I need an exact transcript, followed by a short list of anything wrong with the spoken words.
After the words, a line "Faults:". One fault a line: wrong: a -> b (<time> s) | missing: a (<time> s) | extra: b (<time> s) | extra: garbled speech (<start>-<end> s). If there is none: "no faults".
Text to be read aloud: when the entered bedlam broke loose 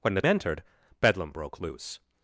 when the entered bedlam broke loose
Faults:
no faults